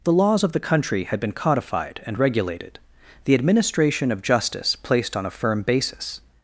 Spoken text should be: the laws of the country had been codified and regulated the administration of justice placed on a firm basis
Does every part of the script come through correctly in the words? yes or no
yes